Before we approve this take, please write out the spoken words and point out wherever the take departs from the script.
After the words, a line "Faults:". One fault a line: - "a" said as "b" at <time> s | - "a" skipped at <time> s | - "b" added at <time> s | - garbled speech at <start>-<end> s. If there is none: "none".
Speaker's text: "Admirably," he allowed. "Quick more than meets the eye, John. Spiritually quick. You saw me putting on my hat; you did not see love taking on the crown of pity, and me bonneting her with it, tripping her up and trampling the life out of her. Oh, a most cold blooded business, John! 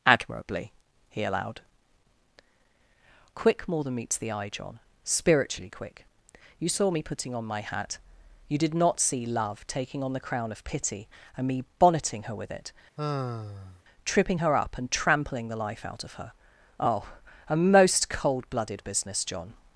"Admirably," he allowed. "Quick more than meets the eye, John. Spiritually quick. You saw me putting on my hat; you did not see love taking on the crown of pity, and me bonneting her with it, tripping her up and trampling the life out of her. Oh, a most cold blooded business, John!
Faults:
none